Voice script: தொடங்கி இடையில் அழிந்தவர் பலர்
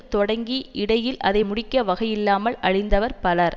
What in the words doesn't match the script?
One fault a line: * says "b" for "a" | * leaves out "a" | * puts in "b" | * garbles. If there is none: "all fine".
* puts in "அதை முடிக்க வகையில்லாமல்"